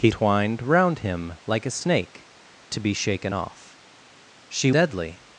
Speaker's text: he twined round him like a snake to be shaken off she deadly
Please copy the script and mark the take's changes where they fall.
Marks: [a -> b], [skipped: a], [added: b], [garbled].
he twined round him like a snake to be shaken off she deadly